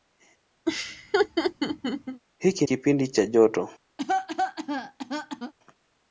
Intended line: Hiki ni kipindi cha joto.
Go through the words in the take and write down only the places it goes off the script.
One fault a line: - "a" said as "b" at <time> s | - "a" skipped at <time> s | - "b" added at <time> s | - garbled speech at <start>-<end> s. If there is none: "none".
- "ni" skipped at 2.7 s